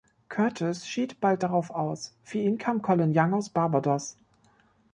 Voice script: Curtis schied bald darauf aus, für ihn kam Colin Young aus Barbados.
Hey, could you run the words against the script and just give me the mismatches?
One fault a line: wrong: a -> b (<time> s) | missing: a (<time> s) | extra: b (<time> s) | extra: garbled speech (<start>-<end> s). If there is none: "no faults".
no faults